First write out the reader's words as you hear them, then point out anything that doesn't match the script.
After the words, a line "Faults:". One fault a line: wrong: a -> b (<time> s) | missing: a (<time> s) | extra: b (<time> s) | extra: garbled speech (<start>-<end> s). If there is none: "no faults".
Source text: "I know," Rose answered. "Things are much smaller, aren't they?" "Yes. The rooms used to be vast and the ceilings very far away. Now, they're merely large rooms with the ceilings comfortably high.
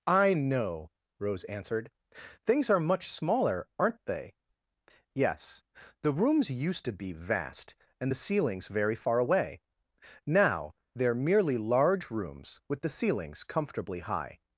"I know," Rose answered. "Things are much smaller, aren't they?" "Yes. The rooms used to be vast and the ceilings very far away. Now, they're merely large rooms with the ceilings comfortably high.
Faults:
no faults